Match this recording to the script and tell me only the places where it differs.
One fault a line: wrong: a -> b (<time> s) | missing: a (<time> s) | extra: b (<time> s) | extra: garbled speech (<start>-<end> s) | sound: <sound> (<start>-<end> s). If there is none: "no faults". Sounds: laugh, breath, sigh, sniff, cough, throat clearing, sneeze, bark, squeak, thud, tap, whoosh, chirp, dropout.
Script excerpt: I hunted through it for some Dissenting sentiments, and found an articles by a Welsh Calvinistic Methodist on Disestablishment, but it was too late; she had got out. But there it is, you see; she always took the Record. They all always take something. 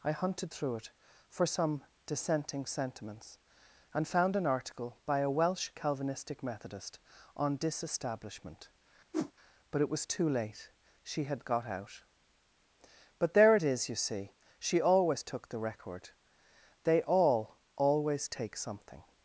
wrong: articles -> article (4.5 s)
sound: whoosh (9.1-9.3 s)